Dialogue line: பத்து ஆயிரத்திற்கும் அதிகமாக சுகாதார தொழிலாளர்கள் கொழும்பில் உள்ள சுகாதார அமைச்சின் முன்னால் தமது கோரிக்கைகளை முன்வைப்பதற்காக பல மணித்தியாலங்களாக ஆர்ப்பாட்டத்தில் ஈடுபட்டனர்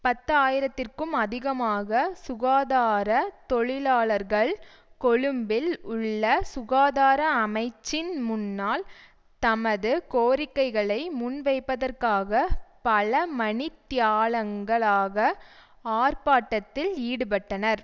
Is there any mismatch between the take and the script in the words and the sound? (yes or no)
no